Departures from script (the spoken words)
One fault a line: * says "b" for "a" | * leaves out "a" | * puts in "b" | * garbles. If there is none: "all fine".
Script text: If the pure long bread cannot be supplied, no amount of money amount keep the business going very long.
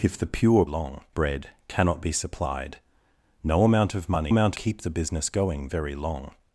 all fine